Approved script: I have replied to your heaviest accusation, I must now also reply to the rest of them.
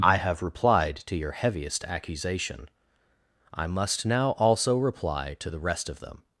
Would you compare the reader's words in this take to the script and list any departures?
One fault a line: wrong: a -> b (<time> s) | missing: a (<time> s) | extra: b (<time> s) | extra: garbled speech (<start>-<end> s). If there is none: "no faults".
no faults